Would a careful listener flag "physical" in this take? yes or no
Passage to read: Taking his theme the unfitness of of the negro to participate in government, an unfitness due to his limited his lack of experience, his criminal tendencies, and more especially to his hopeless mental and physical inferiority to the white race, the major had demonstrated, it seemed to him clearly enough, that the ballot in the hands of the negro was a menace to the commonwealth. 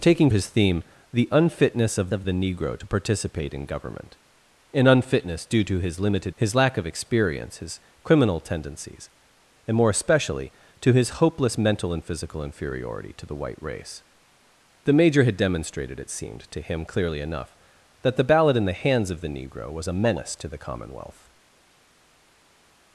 no